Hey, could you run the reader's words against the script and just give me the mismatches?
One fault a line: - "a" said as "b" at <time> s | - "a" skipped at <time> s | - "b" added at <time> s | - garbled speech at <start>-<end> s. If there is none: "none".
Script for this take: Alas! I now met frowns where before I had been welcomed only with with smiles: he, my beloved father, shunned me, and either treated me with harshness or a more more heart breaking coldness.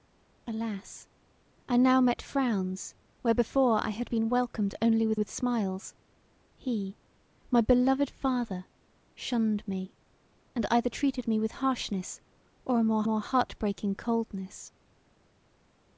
none